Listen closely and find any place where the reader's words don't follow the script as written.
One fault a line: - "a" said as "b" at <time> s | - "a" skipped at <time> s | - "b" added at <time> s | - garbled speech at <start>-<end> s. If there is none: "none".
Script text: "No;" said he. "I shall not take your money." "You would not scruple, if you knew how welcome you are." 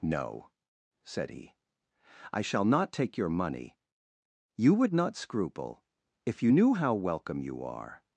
none